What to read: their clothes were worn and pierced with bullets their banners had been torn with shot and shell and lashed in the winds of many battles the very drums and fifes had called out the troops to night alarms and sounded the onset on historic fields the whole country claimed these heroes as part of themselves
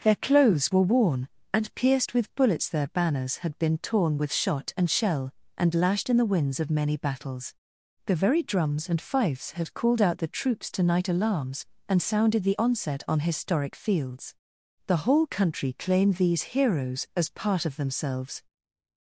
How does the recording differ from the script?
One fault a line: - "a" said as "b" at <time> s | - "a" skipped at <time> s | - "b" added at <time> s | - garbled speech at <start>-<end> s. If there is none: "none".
none